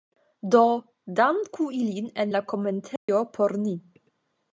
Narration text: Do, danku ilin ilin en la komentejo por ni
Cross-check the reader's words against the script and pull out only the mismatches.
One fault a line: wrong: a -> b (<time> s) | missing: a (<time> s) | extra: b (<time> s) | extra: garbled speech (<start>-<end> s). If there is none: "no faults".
missing: ilin (2.1 s)